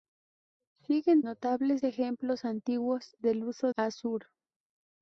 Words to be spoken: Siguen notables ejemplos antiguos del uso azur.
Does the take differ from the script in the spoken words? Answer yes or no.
no